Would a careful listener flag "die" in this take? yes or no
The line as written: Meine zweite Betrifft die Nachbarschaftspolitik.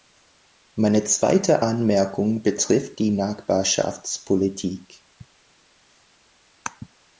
no